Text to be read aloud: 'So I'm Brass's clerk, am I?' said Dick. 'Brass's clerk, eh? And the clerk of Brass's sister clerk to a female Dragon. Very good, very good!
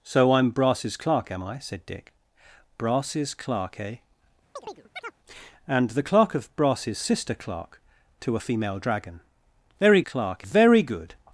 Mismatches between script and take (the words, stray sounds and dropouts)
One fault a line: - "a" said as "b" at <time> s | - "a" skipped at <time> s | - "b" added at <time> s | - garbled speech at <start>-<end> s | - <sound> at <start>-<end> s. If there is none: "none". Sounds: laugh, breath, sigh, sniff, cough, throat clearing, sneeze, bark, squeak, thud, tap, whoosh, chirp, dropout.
- chirp at 4.6-5.2 s
- "good" said as "clerk" at 10.0 s